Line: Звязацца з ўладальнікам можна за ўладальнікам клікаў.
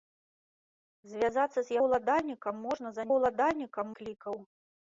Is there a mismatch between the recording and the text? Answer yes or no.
no